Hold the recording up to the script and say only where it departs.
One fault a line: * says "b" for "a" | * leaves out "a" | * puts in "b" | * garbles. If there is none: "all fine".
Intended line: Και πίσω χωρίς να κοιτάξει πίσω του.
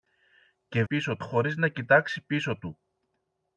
all fine